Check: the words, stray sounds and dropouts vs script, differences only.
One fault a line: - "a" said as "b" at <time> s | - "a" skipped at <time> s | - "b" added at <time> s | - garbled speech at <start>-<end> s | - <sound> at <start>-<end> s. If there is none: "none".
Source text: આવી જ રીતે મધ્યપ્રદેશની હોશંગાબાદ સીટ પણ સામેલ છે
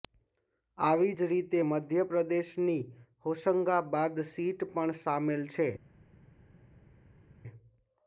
none